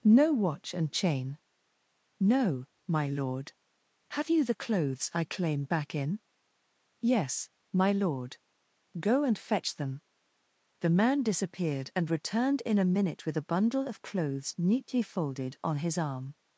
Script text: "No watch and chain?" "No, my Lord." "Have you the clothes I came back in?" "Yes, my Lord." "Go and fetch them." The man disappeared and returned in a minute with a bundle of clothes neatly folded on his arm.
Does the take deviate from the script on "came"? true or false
true